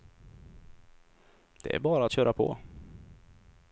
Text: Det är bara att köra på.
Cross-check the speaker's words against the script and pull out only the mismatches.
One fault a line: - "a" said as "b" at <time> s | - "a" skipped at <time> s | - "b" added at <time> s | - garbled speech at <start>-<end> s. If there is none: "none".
none